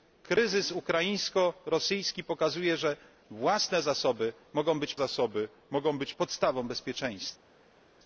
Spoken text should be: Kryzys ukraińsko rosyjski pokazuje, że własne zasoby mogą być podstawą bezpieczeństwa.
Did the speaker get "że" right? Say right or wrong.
right